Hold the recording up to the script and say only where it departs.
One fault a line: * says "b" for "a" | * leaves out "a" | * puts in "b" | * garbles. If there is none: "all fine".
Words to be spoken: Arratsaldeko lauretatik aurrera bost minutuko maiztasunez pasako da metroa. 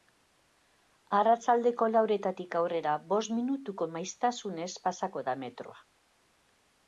all fine